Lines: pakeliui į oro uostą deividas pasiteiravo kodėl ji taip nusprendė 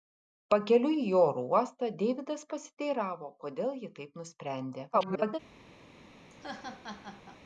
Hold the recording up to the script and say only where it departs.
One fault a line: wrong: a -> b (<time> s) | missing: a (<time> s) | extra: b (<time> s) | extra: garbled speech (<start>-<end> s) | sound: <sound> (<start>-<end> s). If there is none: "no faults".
extra: garbled speech (4.9-5.4 s)
sound: laugh (6.3-7.4 s)